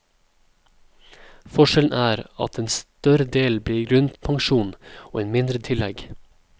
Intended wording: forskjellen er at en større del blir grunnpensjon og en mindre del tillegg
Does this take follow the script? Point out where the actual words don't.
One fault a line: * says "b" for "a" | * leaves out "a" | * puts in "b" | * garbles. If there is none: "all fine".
* leaves out "del"